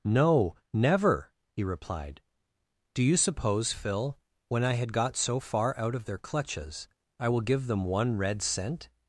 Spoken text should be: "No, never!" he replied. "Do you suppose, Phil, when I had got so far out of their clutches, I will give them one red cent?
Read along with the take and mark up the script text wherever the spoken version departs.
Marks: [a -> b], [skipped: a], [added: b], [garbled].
"No, never!" he replied. "Do you suppose, Phil, when I had got so far out of their clutches, I will give them one red cent?